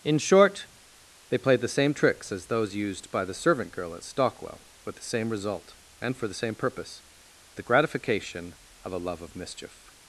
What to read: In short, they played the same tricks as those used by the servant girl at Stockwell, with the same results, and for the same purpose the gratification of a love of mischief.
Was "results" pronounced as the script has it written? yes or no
no